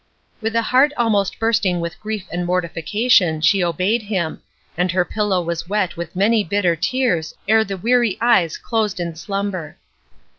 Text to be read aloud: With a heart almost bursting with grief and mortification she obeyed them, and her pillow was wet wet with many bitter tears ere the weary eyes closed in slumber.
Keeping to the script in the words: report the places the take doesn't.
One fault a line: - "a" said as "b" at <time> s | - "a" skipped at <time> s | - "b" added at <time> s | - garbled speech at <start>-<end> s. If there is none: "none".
- "them" said as "him" at 4.0 s
- "wet" skipped at 6.0 s